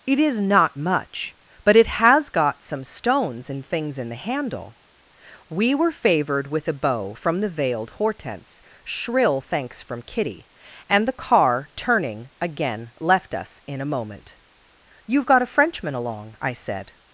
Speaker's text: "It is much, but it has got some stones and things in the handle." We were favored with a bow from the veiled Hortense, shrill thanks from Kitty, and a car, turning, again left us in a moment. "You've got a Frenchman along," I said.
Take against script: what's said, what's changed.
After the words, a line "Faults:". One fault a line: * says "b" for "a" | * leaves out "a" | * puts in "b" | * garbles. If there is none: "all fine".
"It is not much, but it has got some stones and things in the handle." We were favored with a bow from the veiled Hortense, shrill thanks from Kitty, and the car, turning, again left us in a moment. "You've got a Frenchman along," I said.
Faults:
* puts in "not"
* says "the" for "a"